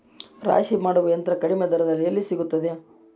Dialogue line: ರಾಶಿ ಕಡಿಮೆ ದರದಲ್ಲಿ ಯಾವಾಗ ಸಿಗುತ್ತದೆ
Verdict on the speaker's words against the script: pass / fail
fail